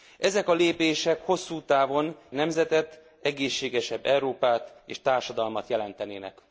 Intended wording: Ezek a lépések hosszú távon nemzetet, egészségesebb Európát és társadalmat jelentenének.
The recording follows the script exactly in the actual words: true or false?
true